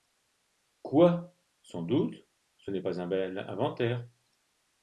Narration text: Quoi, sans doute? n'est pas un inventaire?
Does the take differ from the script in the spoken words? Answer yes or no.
yes